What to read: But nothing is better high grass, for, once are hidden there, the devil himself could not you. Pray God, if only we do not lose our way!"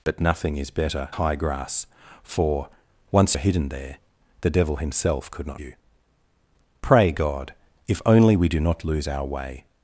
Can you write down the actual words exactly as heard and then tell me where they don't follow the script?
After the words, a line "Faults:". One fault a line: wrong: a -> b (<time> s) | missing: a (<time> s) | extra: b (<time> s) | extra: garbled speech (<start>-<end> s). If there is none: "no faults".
But nothing is better high grass, for, once are hidden there, the devil himself could not you. Pray God, if only we do not lose our way!"
Faults:
no faults